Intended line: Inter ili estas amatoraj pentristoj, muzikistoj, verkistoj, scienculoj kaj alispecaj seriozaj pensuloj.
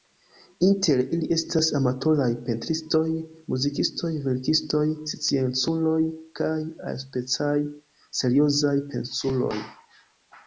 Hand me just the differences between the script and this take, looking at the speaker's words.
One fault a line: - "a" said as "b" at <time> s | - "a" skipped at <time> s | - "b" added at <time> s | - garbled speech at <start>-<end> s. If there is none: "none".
none